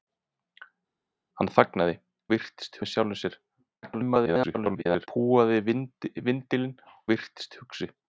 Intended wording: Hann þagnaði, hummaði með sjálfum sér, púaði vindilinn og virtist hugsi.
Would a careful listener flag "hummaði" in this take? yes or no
yes